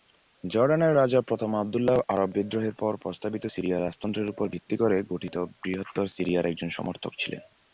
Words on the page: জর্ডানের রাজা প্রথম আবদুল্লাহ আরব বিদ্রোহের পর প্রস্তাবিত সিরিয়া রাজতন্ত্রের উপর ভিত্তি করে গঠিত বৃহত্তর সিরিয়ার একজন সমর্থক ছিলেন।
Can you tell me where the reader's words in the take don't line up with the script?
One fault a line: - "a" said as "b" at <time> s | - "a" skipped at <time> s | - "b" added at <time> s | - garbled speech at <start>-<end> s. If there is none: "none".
none